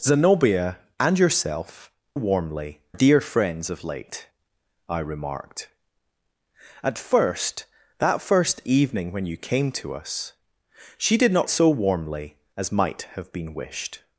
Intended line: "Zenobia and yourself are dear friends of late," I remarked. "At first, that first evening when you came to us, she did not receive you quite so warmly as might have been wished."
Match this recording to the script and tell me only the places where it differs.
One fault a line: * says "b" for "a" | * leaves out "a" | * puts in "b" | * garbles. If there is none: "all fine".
* says "warmly" for "are"
* leaves out "receive you quite"